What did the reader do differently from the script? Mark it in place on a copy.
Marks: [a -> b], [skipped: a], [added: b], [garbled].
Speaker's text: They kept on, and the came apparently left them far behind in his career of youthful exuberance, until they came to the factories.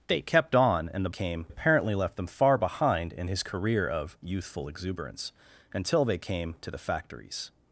They kept on, and the came apparently left them far behind in his career of youthful exuberance, until they came to the factories.